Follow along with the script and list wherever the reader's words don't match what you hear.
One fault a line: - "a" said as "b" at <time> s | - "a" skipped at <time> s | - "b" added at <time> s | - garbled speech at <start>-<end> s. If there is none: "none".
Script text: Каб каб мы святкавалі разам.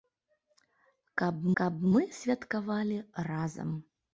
none